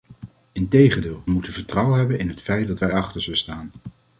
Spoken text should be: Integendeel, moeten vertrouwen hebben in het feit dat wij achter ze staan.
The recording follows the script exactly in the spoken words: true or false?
true